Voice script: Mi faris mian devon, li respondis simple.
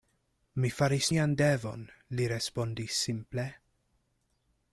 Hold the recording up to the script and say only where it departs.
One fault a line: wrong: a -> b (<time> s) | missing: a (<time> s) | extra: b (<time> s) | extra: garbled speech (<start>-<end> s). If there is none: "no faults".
no faults